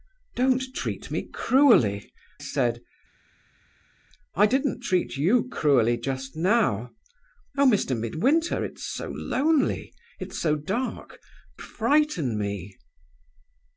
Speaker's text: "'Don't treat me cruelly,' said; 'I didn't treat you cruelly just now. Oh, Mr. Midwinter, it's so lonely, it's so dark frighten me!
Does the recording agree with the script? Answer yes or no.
yes